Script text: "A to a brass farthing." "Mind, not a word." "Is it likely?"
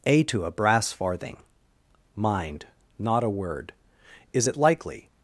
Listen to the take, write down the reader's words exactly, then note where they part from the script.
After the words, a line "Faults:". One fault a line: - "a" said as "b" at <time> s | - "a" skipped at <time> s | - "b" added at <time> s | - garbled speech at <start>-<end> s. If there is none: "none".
"A to a brass farthing." "Mind, not a word." "Is it likely?"
Faults:
none